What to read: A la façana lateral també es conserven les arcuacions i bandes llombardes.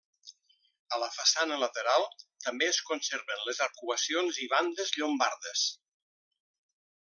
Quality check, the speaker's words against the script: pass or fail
pass